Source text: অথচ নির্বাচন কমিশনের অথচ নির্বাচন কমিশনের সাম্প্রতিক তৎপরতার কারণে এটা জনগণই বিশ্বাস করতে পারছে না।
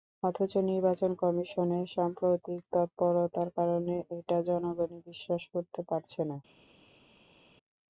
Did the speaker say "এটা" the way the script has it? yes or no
yes